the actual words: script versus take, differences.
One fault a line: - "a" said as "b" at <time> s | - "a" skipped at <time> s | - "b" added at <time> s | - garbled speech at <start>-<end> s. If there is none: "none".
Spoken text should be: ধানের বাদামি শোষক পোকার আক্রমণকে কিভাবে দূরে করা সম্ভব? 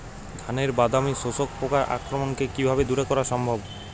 none